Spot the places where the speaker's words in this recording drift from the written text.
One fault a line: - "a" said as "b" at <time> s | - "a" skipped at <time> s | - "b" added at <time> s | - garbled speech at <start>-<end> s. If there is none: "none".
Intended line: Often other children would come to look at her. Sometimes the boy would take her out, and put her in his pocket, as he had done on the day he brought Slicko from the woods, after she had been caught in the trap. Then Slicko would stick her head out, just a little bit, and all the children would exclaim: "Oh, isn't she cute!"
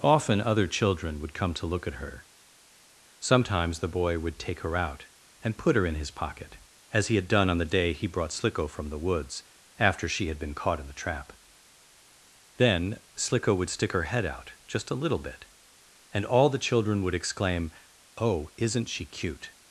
none